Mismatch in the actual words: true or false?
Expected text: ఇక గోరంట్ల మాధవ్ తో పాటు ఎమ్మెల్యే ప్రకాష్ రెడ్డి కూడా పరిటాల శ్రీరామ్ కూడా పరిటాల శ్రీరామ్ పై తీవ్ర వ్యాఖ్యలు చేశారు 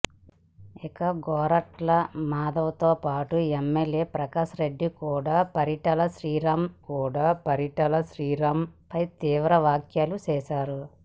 false